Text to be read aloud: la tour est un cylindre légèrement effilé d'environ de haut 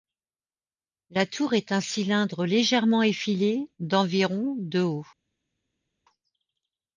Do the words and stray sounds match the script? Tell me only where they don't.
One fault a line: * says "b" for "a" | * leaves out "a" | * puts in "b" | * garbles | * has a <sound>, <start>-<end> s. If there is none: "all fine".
all fine